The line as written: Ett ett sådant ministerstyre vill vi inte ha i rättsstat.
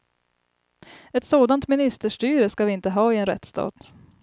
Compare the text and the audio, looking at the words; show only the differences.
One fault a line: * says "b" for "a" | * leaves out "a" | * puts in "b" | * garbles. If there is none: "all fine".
* leaves out "ett"
* says "ska" for "vill"
* puts in "en"